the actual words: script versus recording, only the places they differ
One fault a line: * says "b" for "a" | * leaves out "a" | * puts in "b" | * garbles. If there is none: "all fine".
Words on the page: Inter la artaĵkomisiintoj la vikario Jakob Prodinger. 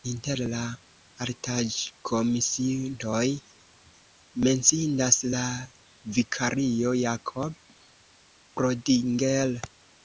* puts in "menciindas"